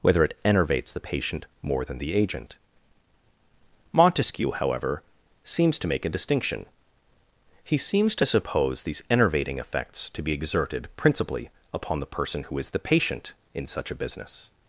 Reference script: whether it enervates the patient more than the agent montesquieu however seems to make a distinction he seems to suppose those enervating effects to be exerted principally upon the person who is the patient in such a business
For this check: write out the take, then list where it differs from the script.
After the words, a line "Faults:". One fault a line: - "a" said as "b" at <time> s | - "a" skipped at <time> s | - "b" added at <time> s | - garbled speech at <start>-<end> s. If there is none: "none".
whether it enervates the patient more than the agent montesquieu however seems to make a distinction he seems to suppose these enervating effects to be exerted principally upon the person who is the patient in such a business
Faults:
- "those" said as "these" at 8.8 s